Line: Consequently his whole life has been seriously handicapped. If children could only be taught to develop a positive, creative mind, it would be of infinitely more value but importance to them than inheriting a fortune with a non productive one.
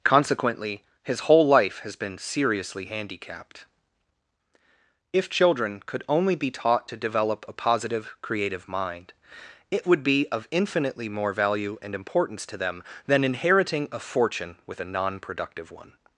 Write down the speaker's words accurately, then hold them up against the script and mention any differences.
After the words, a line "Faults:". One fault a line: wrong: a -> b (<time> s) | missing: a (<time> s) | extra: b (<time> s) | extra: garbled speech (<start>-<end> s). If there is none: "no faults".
Consequently his whole life has been seriously handicapped. If children could only be taught to develop a positive, creative mind, it would be of infinitely more value and importance to them than inheriting a fortune with a non productive one.
Faults:
wrong: but -> and (11.8 s)